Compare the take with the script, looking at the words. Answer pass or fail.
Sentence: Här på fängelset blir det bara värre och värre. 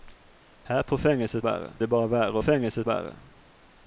fail